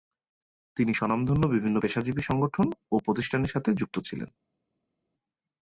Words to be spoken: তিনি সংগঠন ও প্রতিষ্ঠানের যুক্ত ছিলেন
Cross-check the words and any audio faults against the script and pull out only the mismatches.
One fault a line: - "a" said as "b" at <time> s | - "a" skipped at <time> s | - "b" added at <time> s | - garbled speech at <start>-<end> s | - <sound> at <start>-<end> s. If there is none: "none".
- "স্বনামধন্য বিভিন্ন পেশাজীবী" added at 0.9 s
- "সাথে" added at 3.5 s